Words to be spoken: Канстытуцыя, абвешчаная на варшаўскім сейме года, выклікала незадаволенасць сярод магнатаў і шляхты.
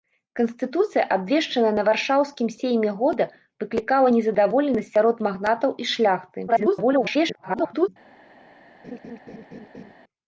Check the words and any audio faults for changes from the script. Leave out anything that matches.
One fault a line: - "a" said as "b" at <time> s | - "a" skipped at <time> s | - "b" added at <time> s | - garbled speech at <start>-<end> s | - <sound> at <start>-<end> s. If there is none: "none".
- garbled speech at 6.5-7.9 s
- laugh at 8.8-9.9 s